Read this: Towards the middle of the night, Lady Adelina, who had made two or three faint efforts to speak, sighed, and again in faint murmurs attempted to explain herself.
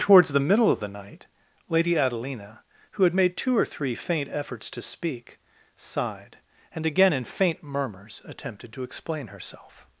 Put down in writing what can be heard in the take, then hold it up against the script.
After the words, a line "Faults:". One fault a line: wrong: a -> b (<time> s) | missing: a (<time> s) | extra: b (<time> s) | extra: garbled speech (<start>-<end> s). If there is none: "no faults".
Towards the middle of the night, Lady Adelina, who had made two or three faint efforts to speak, sighed, and again in faint murmurs attempted to explain herself.
Faults:
no faults